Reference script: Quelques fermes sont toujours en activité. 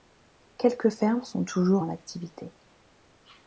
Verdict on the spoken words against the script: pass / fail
pass